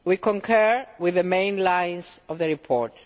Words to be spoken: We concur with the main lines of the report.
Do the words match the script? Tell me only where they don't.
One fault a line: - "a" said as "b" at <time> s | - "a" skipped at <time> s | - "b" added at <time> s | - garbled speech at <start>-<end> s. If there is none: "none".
none